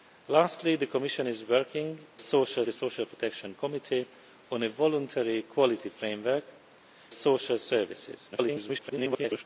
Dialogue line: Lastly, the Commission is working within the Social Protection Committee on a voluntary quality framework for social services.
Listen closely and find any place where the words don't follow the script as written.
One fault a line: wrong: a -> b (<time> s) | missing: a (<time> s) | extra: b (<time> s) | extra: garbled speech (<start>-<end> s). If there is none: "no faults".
wrong: within -> social (2.2 s)
missing: for (6.4 s)
extra: garbled speech (8.3-9.4 s)